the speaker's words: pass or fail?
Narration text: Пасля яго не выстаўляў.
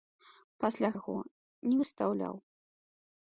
pass